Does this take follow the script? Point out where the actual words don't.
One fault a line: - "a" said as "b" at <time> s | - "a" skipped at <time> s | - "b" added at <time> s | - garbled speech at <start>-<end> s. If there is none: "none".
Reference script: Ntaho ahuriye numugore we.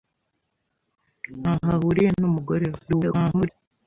- garbled speech at 2.9-3.5 s